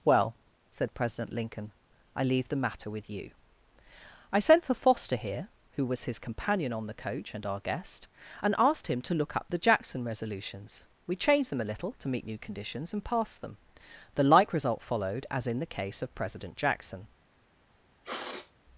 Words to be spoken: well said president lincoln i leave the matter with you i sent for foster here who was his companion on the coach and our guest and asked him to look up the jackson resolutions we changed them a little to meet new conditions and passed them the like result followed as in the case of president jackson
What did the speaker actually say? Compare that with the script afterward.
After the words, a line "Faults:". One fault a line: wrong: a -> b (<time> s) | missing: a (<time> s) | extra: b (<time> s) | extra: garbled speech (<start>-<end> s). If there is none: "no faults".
well said president lincoln i leave the matter with you i sent for foster here who was his companion on the coach and our guest and asked him to look up the jackson resolutions we changed them a little to meet new conditions and passed them the like result followed as in the case of president jackson
Faults:
no faults